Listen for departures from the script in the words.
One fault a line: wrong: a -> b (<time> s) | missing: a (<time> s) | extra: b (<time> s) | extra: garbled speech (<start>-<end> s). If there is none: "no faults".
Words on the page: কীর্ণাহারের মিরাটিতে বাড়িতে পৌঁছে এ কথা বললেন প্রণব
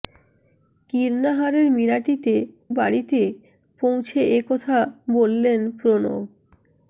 no faults